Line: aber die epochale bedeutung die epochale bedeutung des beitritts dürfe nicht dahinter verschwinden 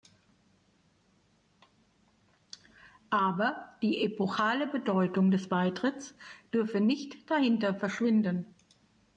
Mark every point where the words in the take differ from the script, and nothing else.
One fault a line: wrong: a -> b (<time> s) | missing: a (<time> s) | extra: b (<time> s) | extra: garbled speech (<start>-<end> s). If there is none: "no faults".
missing: die epochale bedeutung (5.3 s)